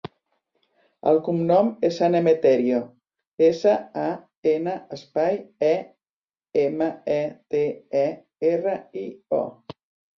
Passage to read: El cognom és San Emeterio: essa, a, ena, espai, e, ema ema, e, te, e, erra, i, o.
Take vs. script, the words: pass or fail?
fail